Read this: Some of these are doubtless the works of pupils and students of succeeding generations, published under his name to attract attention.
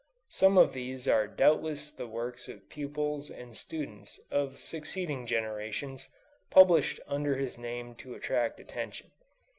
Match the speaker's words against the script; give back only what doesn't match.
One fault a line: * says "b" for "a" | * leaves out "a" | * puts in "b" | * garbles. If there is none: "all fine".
all fine